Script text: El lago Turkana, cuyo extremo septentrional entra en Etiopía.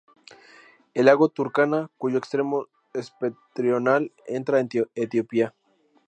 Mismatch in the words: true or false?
false